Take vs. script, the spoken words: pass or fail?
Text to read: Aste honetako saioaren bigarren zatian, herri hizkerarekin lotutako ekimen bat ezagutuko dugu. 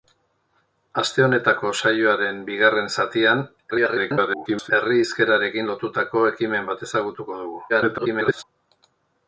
fail